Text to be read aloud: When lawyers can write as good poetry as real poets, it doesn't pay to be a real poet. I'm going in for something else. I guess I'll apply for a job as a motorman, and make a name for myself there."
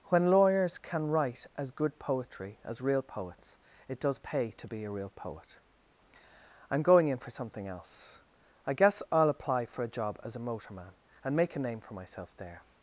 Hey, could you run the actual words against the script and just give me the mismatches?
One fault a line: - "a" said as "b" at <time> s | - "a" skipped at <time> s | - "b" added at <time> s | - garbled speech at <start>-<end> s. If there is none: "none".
- "doesn't" said as "does" at 4.0 s